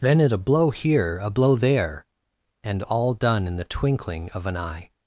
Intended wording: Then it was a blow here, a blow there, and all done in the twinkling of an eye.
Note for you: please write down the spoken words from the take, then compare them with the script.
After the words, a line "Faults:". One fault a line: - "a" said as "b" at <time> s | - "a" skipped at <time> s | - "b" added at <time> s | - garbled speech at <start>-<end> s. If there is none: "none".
Then it a blow here, a blow there, and all done in the twinkling of an eye.
Faults:
- "was" skipped at 0.3 s